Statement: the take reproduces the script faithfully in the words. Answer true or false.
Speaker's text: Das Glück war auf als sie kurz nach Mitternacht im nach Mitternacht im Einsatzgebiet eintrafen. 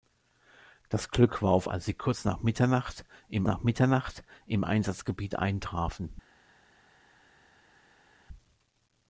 true